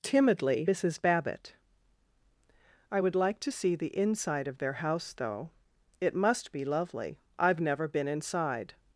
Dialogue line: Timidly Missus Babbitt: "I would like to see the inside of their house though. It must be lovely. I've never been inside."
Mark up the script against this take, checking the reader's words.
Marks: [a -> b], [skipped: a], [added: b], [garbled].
Timidly Missus Babbitt: "I would like to see the inside of their house though. It must be lovely. I've never been inside."